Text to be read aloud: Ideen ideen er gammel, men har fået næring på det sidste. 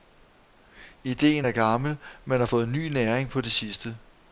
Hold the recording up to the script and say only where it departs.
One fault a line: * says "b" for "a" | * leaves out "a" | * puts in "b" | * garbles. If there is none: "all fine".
* leaves out "ideen"
* puts in "ny"